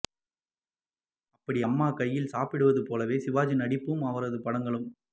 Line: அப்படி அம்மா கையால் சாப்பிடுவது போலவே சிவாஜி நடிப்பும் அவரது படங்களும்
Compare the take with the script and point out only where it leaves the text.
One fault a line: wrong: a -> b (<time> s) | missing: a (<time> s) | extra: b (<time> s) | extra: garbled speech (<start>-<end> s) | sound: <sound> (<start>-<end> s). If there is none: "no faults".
no faults